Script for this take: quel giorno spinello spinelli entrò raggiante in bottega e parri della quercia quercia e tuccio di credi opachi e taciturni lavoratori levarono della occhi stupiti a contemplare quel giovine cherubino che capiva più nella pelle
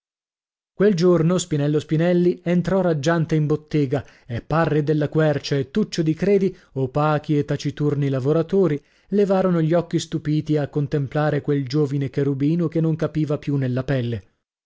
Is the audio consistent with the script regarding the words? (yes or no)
no